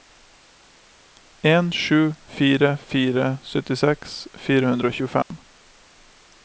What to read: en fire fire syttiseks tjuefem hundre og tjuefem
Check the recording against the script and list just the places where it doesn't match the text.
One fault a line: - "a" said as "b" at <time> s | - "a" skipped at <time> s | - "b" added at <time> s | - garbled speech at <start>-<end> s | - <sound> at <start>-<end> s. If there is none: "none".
- "sju" added at 1.7 s
- "tjuefem" said as "fire" at 4.4 s
- dropout at 5.2-5.3 s